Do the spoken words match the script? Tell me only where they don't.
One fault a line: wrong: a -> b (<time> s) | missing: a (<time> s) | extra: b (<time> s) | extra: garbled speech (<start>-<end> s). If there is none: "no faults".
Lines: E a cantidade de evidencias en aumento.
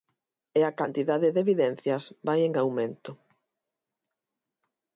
extra: vai (2.3 s)